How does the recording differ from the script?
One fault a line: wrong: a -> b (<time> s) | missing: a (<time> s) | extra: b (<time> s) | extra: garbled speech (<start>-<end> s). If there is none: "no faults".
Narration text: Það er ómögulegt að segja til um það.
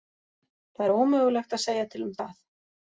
no faults